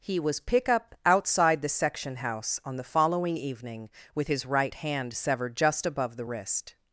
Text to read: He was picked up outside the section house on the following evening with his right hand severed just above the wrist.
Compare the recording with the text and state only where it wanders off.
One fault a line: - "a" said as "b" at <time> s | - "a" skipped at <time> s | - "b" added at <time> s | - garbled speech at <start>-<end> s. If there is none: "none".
- "picked" said as "pick" at 0.4 s